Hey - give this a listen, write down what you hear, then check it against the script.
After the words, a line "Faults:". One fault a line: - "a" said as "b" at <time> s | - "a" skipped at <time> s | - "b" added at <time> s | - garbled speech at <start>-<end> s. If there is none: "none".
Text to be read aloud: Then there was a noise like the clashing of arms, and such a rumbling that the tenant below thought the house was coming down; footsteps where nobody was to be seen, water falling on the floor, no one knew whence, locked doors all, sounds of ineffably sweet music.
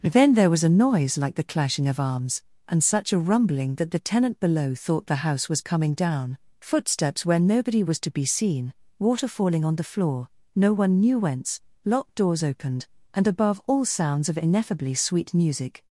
Then there was a noise like the clashing of arms, and such a rumbling that the tenant below thought the house was coming down; footsteps where nobody was to be seen, water falling on the floor, no one knew whence, locked doors opened, and above all, sounds of ineffably sweet music.
Faults:
- "opened and above" added at 12.4 s